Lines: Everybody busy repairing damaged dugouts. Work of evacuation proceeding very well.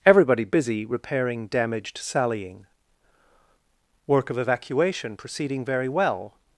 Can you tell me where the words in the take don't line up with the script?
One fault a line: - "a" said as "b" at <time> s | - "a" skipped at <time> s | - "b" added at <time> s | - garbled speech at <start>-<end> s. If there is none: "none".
- "dugouts" said as "sallying" at 2.0 s